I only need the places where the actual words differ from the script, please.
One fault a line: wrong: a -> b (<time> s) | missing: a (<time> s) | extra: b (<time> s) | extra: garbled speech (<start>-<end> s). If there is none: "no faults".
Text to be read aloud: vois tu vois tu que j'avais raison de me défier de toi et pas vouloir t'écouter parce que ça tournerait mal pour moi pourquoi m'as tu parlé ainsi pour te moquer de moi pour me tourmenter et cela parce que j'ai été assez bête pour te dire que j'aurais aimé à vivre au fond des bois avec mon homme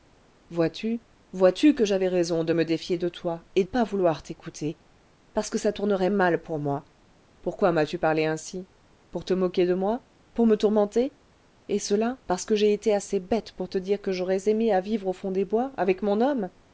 no faults